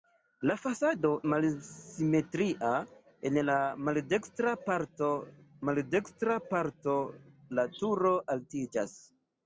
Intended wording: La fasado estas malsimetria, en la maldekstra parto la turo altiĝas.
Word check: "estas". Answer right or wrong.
wrong